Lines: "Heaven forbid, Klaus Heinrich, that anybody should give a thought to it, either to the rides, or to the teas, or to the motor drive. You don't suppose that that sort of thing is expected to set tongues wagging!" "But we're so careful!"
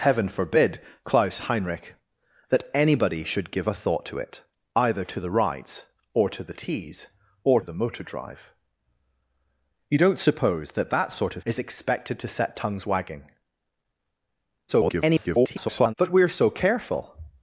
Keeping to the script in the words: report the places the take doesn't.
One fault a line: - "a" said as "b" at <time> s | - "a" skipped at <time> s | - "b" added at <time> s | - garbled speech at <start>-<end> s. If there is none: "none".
- "to" skipped at 7.6 s
- "thing" skipped at 11.4 s
- garbled speech at 14.7-15.9 s